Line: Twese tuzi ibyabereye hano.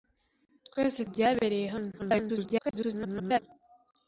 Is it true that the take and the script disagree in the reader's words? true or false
true